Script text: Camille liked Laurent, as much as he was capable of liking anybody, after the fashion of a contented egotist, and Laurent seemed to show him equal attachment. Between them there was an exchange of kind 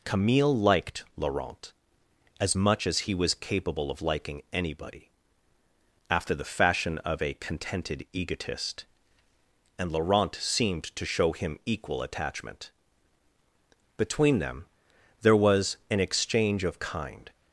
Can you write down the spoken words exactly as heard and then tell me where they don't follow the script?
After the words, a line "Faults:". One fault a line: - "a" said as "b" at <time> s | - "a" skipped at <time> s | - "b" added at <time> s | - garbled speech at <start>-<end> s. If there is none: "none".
Camille liked Laurent, as much as he was capable of liking anybody, after the fashion of a contented egotist, and Laurent seemed to show him equal attachment. Between them there was an exchange of kind
Faults:
none